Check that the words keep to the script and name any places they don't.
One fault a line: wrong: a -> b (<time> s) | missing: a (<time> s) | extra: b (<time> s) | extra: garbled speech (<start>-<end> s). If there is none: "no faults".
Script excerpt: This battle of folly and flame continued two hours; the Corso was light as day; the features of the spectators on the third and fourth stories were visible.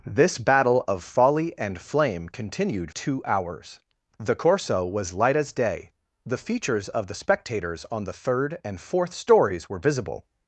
no faults